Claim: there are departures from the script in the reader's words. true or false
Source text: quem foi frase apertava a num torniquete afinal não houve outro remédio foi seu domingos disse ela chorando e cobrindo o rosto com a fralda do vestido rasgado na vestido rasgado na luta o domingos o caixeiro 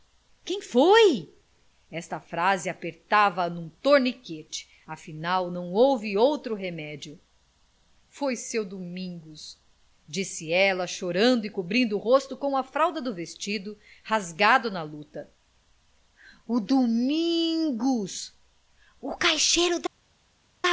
true